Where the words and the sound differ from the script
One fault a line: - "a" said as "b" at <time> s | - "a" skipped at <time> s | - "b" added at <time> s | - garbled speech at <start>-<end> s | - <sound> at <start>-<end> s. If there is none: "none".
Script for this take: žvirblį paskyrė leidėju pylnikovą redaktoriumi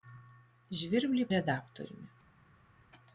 - "paskyrė leidėju pylnikovą" skipped at 1.2 s